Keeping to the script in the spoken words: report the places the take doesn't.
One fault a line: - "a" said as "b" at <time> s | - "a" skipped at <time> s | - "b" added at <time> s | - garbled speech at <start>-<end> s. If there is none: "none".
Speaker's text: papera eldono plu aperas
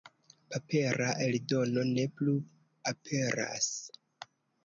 - "ne" added at 1.9 s